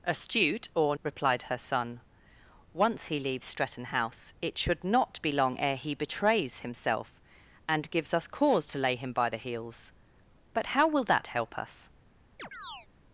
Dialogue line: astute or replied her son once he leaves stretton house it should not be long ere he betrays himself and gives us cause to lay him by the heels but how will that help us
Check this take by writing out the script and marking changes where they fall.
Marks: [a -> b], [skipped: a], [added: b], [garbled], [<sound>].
astute or replied her son once he leaves stretton house it should not be long ere he betrays himself and gives us cause to lay him by the heels but how will that help us [chirp]